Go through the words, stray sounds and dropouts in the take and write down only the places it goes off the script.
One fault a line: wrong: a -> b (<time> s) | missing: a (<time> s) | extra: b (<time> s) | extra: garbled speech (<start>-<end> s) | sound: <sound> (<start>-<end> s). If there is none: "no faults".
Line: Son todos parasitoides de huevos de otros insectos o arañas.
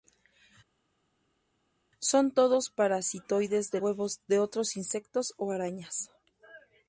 no faults